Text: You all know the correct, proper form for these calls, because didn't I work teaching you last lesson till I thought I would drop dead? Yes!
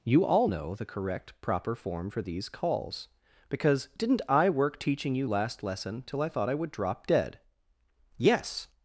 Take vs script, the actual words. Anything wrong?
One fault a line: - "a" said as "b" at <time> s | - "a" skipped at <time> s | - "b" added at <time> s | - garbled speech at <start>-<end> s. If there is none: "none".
none